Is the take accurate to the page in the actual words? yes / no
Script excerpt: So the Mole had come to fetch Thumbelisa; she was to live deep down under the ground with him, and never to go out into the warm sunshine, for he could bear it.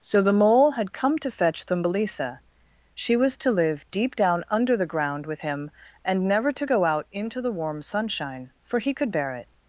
yes